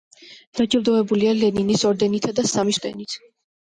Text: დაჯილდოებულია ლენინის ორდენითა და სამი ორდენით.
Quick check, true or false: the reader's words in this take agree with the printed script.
true